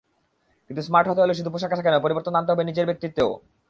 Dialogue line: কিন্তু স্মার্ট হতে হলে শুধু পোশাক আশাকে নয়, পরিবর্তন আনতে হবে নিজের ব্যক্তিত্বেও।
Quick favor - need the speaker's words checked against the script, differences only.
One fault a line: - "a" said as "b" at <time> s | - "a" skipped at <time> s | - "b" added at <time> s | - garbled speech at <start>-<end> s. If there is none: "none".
none